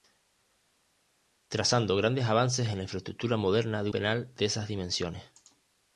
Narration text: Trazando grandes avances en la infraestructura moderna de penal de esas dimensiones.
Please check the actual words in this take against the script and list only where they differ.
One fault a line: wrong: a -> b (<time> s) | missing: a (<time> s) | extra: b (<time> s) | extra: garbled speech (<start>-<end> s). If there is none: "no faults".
no faults